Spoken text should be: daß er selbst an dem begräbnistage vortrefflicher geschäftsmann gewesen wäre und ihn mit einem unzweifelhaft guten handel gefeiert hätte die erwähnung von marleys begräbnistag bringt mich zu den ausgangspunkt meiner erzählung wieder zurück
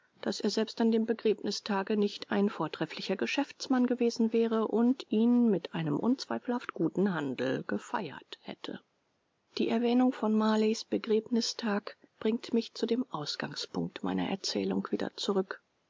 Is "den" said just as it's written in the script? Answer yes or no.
no